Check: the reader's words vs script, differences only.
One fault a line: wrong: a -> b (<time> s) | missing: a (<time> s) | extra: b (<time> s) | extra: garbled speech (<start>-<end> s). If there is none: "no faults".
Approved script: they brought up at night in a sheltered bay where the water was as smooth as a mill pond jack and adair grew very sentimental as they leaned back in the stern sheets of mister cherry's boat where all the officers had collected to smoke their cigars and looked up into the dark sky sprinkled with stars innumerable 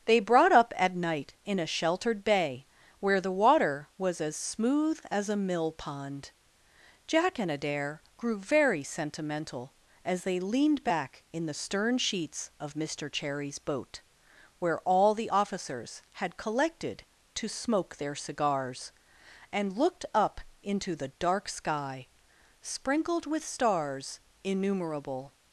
no faults